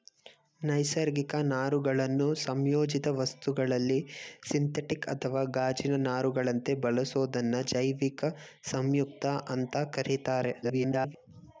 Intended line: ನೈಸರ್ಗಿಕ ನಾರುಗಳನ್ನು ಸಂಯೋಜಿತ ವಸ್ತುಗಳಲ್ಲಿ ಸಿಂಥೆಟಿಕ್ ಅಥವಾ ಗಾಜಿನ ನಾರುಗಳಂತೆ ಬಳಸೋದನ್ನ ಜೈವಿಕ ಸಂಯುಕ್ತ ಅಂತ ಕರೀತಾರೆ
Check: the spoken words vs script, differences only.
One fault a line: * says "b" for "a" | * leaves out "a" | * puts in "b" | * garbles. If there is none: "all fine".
* garbles